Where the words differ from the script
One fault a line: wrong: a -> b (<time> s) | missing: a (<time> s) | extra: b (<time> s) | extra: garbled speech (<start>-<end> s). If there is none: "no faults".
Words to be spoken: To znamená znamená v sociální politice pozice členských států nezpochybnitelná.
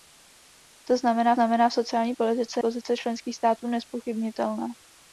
no faults